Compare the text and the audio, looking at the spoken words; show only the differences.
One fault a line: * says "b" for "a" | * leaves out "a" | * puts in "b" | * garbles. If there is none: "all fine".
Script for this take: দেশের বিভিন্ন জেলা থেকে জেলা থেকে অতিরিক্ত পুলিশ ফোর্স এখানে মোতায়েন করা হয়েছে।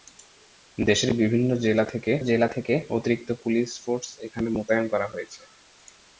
all fine